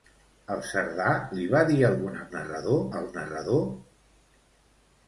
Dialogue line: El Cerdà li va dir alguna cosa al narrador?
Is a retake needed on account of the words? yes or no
yes